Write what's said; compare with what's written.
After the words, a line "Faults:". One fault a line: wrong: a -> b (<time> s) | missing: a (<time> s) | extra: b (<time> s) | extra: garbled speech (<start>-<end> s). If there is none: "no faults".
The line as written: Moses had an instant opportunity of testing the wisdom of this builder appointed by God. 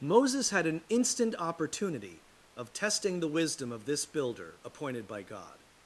Moses had an instant opportunity of testing the wisdom of this builder appointed by God.
Faults:
no faults